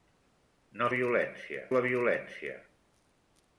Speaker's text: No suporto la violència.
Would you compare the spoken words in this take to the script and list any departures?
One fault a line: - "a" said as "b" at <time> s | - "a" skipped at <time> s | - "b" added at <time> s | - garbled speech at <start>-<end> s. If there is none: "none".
- "suporto" said as "violència" at 1.0 s